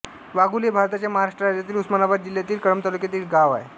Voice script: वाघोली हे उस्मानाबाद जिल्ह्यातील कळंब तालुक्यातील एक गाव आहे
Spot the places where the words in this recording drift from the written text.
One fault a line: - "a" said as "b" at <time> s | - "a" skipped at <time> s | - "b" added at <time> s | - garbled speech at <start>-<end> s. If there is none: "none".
- "भारताच्या महाराष्ट्र राज्यातील" added at 0.7 s